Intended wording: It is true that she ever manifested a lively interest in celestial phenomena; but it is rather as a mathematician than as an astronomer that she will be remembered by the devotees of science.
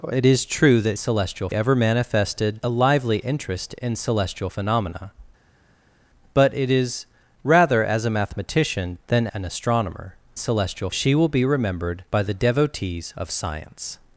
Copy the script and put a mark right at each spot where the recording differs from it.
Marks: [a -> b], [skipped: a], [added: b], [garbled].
It is true that [she -> celestial] ever manifested a lively interest in celestial phenomena; but it is rather as a mathematician than [skipped: as] an astronomer [that -> celestial] she will be remembered by the devotees of science.